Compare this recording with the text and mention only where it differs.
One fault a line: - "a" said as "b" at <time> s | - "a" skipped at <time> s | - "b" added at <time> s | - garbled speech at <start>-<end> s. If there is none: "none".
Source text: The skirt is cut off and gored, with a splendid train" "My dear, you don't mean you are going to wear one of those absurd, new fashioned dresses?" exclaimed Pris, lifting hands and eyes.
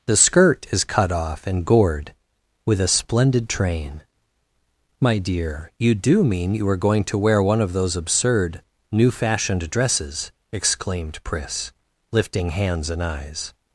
- "don't" said as "do" at 5.9 s